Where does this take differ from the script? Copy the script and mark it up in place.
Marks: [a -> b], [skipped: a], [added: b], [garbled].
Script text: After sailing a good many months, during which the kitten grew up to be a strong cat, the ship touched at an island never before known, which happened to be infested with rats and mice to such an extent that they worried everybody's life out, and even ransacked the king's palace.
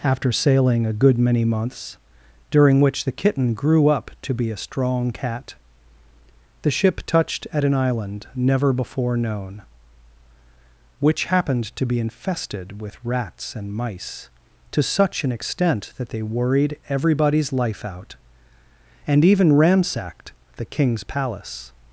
After sailing a good many months, during which the kitten grew up to be a strong cat, the ship touched at an island never before known, which happened to be infested with rats and mice to such an extent that they worried everybody's life out, and even ransacked the king's palace.